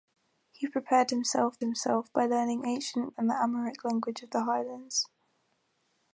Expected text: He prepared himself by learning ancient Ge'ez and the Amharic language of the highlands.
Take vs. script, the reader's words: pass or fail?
fail